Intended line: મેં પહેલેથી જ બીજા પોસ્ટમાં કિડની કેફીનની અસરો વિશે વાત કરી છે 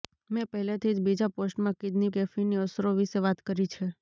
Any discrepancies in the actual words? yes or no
no